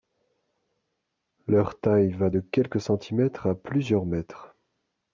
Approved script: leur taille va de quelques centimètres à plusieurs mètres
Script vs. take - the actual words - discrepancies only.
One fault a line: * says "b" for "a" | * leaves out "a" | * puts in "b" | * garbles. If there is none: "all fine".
all fine